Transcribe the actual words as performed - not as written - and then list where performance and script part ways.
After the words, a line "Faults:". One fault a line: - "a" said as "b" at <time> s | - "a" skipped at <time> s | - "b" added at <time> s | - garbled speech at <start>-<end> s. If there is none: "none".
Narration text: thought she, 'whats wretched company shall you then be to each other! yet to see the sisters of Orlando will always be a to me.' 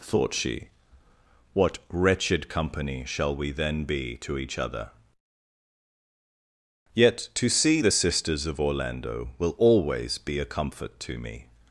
thought she, 'what wretched company shall we then be to each other! yet to see the sisters of Orlando will always be a comfort to me.'
Faults:
- "whats" said as "what" at 1.5 s
- "you" said as "we" at 3.4 s
- "comfort" added at 10.4 s